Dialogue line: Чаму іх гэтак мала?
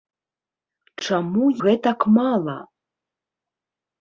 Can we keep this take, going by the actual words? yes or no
no